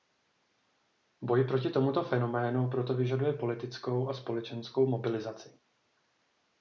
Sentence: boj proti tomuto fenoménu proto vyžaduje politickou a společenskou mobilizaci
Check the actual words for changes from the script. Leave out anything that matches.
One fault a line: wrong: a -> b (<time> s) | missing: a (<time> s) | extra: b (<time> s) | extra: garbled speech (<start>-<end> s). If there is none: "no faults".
no faults